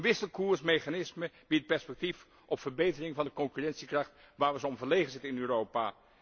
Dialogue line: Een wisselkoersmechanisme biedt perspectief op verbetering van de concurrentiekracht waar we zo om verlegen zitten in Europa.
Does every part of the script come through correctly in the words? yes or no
yes